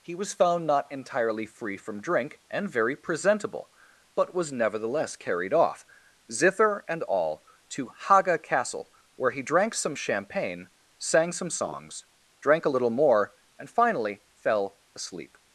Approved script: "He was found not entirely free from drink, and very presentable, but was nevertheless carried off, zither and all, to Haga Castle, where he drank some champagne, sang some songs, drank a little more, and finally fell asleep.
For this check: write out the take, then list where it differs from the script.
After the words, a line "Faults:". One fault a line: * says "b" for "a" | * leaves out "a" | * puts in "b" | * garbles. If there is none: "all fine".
"He was found not entirely free from drink, and very presentable, but was nevertheless carried off, zither and all, to Haga Castle, where he drank some champagne, sang some songs, drank a little more, and finally fell asleep.
Faults:
all fine